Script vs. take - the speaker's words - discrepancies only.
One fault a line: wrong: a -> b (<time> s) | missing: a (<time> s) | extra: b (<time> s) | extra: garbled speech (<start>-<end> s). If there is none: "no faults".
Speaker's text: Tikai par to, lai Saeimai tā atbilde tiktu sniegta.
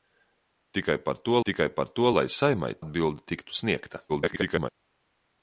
extra: tikai par to (1.4 s)
missing: tā (2.7 s)
extra: garbled speech (4.1-4.7 s)